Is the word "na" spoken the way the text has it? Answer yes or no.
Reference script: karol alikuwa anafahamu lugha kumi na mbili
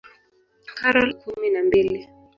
yes